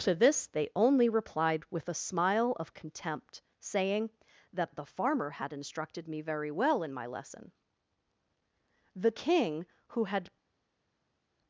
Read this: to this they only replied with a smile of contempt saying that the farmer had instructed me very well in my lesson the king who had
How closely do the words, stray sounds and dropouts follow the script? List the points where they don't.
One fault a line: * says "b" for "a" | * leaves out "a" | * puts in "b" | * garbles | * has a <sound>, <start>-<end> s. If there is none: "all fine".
all fine